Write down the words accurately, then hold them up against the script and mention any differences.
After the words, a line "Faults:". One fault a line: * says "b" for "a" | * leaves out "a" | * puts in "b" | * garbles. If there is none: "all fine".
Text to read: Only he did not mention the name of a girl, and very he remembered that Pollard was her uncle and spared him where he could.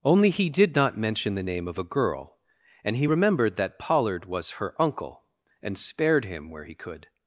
Only he did not mention the name of a girl, and he remembered that Pollard was her uncle and spared him where he could.
Faults:
* leaves out "very"